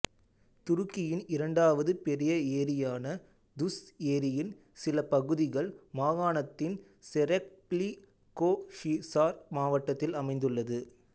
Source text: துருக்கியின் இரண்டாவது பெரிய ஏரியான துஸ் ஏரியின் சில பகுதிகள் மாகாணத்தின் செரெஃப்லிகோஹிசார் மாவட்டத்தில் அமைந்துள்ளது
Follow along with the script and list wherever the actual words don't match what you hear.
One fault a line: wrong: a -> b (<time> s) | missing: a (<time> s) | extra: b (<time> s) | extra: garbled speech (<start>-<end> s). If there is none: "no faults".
no faults